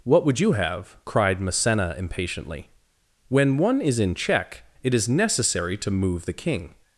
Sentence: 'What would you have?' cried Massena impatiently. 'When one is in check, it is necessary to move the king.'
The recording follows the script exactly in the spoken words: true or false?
true